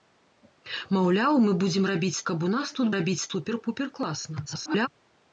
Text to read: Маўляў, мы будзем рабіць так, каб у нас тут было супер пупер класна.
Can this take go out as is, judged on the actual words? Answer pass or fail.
fail